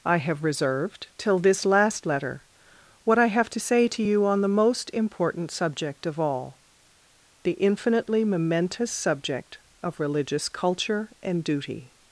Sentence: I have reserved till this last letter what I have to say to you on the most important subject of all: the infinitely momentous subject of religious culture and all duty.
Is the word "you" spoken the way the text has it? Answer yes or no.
yes